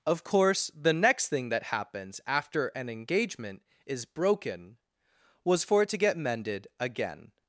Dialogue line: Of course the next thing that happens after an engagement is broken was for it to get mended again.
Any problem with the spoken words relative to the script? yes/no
no